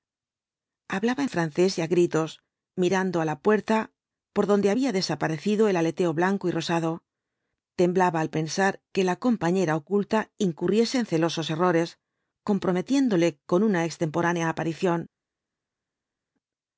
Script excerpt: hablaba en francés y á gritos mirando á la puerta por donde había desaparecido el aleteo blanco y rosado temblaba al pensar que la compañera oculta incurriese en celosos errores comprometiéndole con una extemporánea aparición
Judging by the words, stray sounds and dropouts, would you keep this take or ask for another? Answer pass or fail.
pass